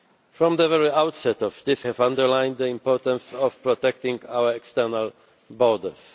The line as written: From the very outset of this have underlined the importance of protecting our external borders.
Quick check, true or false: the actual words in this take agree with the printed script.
true